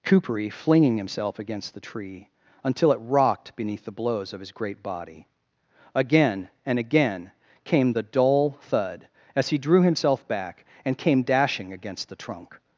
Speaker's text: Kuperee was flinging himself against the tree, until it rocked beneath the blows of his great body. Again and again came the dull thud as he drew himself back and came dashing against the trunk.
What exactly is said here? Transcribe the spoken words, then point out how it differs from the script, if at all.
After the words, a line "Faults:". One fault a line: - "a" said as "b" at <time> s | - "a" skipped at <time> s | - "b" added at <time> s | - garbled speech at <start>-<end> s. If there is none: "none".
Kuperee flinging himself against the tree, until it rocked beneath the blows of his great body. Again and again came the dull thud as he drew himself back and came dashing against the trunk.
Faults:
- "was" skipped at 0.5 s